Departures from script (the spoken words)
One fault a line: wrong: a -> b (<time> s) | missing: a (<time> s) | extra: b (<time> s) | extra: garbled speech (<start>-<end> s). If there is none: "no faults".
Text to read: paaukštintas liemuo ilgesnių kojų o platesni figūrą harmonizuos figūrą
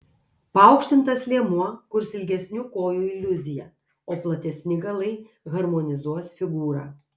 extra: kurs (2.0 s)
extra: iliuziją (3.1 s)
wrong: figūrą -> galai (4.9 s)